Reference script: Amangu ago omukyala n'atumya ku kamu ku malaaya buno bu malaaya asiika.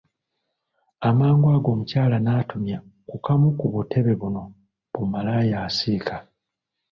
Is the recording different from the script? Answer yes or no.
yes